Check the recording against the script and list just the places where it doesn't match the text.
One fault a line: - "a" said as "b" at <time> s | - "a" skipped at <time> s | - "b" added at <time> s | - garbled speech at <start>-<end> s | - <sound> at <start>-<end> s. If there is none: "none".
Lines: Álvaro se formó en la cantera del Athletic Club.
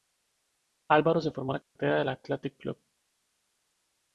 - dropout at 1.6-1.8 s